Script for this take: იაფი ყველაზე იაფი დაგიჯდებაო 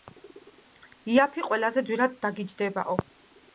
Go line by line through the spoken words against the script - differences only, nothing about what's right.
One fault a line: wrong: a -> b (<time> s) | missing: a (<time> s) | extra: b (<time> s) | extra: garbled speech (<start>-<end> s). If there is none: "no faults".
wrong: იაფი -> ძვირად (1.9 s)